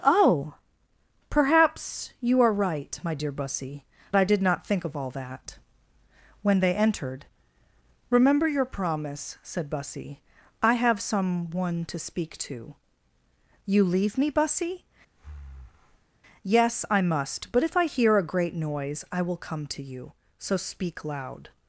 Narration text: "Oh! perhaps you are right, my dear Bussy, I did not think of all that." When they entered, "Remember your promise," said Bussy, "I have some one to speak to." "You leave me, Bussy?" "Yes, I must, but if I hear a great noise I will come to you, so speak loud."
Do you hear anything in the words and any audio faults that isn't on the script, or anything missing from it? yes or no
yes